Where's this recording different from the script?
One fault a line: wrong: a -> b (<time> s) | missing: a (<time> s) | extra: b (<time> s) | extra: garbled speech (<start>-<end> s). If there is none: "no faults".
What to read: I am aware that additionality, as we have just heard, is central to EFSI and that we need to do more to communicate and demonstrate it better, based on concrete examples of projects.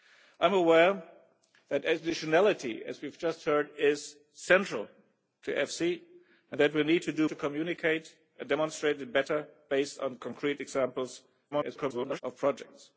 missing: more (7.3 s)
extra: garbled speech (11.5-12.2 s)